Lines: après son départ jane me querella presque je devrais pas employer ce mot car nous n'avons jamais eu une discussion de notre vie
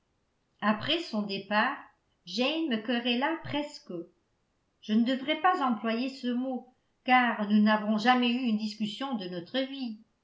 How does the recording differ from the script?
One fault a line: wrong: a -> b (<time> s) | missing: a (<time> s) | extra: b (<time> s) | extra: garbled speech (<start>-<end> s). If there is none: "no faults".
extra: ne (4.9 s)